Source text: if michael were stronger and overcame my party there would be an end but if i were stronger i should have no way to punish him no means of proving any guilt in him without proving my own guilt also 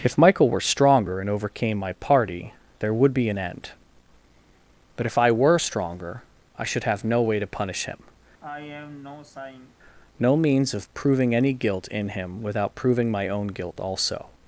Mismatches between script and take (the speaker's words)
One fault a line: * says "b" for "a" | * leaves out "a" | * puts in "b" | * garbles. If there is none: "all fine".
all fine